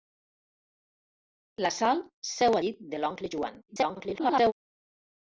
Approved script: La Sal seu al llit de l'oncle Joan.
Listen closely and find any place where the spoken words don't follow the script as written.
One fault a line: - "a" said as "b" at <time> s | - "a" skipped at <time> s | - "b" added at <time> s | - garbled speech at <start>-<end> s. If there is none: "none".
- "al" skipped at 2.6 s
- garbled speech at 3.7-4.5 s